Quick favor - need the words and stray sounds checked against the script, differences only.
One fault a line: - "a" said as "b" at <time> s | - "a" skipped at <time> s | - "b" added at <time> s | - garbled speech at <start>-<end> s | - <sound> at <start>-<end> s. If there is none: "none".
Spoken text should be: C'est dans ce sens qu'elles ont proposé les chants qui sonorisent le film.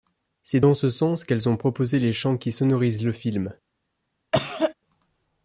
- cough at 4.3-4.7 s